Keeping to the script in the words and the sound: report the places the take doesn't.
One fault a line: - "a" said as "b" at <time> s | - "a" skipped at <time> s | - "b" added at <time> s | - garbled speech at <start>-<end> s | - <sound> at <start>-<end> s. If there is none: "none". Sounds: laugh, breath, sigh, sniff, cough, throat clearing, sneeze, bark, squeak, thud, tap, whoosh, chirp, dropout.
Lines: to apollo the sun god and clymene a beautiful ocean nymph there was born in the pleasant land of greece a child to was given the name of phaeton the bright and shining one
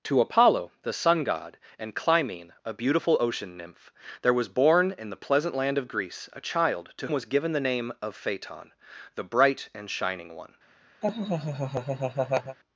- laugh at 11.0-12.6 s